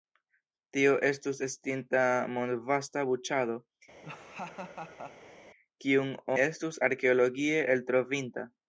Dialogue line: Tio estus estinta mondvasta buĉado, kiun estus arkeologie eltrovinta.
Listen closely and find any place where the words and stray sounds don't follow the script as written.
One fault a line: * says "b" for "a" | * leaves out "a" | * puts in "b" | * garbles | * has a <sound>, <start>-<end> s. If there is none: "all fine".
* has a laugh, 4.0-5.4 s